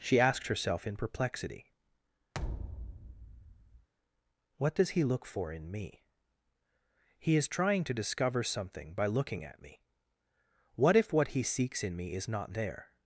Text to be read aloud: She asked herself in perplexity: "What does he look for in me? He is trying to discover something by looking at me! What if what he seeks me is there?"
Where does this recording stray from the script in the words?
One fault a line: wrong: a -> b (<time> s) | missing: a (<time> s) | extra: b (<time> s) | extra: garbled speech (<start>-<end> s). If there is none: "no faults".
extra: in (11.8 s)
extra: not (12.3 s)